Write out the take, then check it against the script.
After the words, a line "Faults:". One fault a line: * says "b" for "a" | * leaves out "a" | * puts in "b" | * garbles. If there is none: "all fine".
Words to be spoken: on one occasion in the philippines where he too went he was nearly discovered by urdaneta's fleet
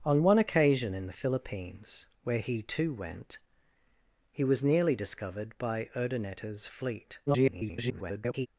on one occasion in the philippines where he too went he was nearly discovered by urdaneta's fleet [garbled]
Faults:
* garbles